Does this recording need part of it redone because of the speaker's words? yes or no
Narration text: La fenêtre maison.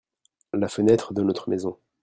yes